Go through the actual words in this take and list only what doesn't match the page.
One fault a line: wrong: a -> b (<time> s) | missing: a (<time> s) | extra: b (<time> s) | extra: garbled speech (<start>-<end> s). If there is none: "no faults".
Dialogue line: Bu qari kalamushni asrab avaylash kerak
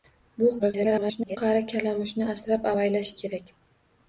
extra: garbled speech (0.6-1.4 s)